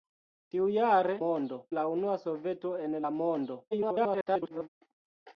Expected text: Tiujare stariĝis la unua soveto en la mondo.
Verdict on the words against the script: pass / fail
fail